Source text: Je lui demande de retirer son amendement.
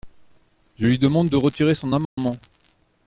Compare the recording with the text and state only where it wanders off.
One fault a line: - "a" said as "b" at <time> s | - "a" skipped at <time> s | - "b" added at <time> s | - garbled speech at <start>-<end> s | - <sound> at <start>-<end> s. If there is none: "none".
- dropout at 2.0-2.2 s